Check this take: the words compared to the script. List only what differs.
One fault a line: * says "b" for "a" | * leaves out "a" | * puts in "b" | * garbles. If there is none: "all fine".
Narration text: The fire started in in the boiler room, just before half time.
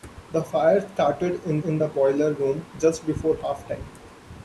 all fine